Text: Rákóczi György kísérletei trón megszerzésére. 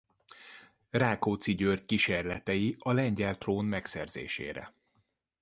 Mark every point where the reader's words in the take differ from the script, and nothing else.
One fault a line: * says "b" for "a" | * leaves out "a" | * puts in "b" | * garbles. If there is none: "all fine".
* puts in "a lengyel"